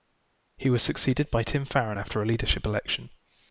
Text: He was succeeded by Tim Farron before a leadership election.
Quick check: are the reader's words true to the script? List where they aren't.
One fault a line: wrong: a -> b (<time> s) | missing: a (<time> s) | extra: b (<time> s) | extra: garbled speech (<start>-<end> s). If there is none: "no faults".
wrong: before -> after (1.9 s)